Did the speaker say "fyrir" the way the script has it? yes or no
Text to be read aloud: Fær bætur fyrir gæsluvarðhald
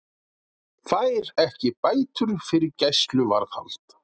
yes